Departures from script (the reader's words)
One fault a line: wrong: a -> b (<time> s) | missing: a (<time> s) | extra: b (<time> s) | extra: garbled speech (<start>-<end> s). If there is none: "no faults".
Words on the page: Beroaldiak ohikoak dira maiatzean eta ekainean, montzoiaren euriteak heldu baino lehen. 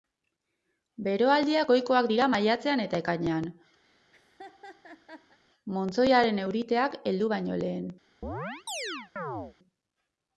no faults